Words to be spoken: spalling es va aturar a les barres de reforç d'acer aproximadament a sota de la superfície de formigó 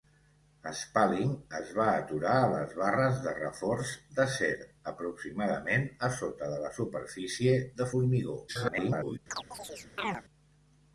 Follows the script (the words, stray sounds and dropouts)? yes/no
no